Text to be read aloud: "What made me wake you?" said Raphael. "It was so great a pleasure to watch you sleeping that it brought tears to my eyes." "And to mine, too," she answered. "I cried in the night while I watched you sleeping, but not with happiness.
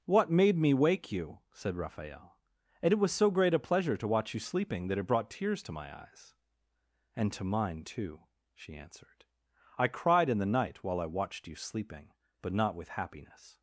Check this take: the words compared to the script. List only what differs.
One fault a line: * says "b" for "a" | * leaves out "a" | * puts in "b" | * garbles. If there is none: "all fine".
* puts in "and"